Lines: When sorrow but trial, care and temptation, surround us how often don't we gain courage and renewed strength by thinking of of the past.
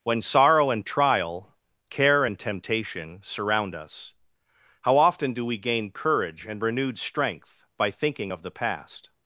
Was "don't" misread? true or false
true